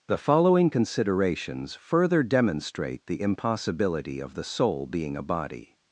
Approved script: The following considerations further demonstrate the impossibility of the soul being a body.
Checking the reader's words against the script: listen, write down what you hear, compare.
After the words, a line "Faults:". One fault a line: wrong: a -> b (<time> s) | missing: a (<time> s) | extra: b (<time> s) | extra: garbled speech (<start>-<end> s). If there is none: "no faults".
The following considerations further demonstrate the impossibility of the soul being a body.
Faults:
no faults